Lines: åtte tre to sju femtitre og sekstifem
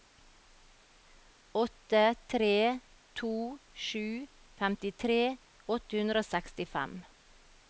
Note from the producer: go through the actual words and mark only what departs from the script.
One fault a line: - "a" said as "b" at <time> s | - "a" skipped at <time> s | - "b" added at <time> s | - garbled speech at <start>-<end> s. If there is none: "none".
- "åtte hundre" added at 5.8 s